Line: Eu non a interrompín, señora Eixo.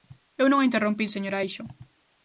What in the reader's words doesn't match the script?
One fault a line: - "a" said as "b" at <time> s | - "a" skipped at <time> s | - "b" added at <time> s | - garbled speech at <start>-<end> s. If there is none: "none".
none